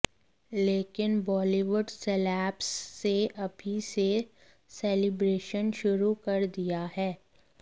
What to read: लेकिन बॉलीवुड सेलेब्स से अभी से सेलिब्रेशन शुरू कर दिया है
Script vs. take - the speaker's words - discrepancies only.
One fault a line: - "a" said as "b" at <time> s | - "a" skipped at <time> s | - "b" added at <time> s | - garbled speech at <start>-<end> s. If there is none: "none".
none